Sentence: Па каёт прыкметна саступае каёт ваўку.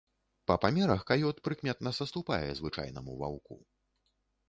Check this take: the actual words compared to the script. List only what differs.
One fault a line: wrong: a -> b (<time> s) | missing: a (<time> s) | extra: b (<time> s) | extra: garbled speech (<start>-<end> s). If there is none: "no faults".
extra: памерах (0.6 s)
wrong: каёт -> звычайнаму (2.6 s)